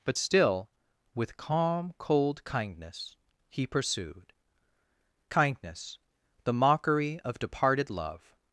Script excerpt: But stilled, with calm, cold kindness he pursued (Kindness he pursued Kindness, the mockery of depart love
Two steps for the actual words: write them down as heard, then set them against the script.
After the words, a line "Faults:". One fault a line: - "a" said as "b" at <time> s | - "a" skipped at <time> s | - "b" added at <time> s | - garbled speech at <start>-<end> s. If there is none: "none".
But still, with calm, cold kindness he pursued (Kindness, the mockery of departed love
Faults:
- "stilled" said as "still" at 0.1 s
- "he pursued Kindness" skipped at 6.0 s
- "depart" said as "departed" at 7.4 s